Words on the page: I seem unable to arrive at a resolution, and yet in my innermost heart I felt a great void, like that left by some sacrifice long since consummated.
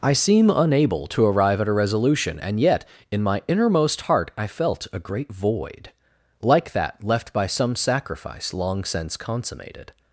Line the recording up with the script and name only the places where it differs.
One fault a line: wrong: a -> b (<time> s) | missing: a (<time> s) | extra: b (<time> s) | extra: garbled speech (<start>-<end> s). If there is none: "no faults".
no faults